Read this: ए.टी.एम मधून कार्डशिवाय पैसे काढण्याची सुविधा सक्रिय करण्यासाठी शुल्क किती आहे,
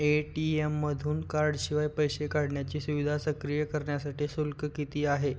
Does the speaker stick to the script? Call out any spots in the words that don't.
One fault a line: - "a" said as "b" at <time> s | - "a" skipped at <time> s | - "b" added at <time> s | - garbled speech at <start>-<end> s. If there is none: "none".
none